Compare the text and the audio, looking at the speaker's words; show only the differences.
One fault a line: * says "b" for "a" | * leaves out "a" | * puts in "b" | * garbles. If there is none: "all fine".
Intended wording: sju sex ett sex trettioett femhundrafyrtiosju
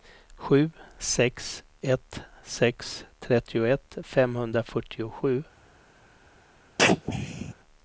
all fine